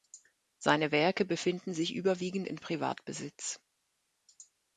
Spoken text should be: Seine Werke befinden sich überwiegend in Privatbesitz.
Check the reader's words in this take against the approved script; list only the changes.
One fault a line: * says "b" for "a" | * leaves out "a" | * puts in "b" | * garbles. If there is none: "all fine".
all fine